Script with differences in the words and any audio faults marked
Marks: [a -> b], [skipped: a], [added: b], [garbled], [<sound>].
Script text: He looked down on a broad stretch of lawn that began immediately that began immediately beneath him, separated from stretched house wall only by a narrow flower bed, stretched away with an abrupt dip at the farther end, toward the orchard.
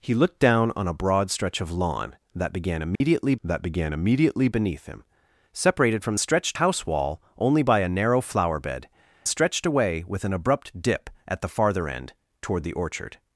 He looked down on a broad stretch of lawn that began immediately [dropout] that began immediately beneath him, separated from stretched house wall only by a narrow flower bed, stretched away with an abrupt dip at the farther end, toward the orchard.